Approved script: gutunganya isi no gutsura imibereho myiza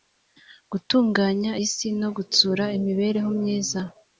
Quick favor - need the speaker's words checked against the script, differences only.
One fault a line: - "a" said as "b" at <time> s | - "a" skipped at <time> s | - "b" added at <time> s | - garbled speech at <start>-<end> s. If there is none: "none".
none